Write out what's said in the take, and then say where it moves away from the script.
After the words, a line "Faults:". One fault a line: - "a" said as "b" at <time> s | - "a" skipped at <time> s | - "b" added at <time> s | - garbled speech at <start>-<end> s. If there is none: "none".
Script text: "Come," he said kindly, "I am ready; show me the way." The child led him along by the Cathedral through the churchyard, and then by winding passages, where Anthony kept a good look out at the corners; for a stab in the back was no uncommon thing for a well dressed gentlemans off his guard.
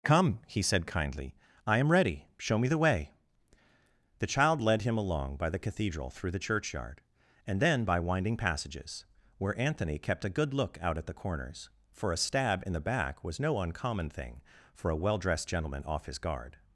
"Come," he said kindly, "I am ready; show me the way." The child led him along by the Cathedral through the churchyard, and then by winding passages, where Anthony kept a good look out at the corners; for a stab in the back was no uncommon thing for a well dressed gentleman off his guard.
Faults:
- "gentlemans" said as "gentleman" at 15.5 s